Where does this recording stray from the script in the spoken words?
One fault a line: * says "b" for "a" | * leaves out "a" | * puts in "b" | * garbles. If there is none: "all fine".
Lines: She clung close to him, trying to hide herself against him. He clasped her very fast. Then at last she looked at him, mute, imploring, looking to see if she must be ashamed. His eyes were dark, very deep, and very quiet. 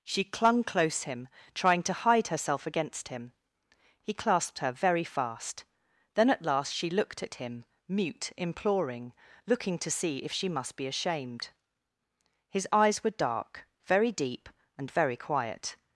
* leaves out "to"